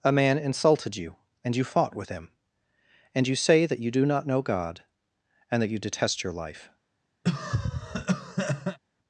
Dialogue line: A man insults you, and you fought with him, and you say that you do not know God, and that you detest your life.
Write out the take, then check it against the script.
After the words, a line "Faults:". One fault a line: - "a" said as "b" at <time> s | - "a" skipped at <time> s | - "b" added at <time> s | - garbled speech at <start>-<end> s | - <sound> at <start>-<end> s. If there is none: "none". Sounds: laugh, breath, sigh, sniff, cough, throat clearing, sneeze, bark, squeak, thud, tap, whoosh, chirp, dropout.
A man insulted you, and you fought with him, and you say that you do not know God, and that you detest your life.
Faults:
- "insults" said as "insulted" at 0.4 s
- cough at 7.2-8.8 s